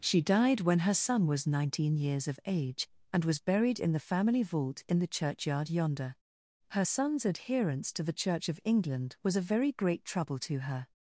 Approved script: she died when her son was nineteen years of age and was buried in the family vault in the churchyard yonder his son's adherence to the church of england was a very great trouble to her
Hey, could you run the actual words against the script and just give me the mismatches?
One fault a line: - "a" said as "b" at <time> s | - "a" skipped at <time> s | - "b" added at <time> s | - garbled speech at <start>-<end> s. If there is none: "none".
- "his" said as "her" at 6.7 s